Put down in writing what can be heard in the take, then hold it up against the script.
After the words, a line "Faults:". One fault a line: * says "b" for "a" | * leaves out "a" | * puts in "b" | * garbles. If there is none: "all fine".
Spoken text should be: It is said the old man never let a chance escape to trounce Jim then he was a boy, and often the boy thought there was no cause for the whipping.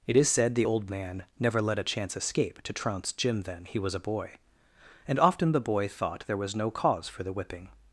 It is said the old man never let a chance escape to trounce Jim then he was a boy, and often the boy thought there was no cause for the whipping.
Faults:
all fine